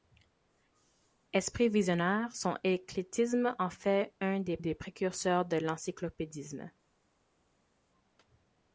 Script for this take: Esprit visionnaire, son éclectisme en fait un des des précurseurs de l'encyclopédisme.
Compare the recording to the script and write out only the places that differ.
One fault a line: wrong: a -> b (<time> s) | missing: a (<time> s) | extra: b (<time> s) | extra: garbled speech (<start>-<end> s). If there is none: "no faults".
no faults